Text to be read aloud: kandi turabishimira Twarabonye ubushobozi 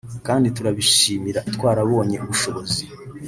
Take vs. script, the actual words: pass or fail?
pass